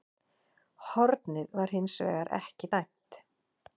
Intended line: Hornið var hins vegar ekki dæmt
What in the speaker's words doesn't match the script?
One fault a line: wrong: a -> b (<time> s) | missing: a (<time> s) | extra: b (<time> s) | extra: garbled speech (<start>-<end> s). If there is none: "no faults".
no faults